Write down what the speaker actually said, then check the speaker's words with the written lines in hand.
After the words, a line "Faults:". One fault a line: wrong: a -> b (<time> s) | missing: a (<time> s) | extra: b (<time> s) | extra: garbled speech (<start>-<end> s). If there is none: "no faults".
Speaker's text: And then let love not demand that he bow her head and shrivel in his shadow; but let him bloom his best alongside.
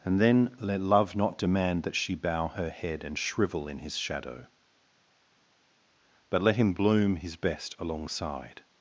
And then let love not demand that she bow her head and shrivel in his shadow; but let him bloom his best alongside.
Faults:
wrong: he -> she (1.9 s)